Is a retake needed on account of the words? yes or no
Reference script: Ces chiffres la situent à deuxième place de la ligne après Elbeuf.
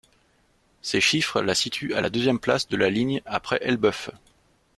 yes